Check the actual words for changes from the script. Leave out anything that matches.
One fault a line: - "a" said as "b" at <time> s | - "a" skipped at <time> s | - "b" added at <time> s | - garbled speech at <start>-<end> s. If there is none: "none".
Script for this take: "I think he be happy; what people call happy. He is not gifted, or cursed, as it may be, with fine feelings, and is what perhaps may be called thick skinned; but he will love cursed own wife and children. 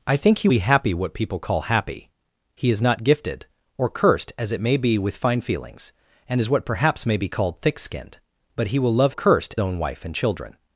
none